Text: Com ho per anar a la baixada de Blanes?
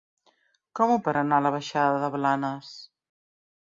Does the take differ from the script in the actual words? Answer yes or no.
no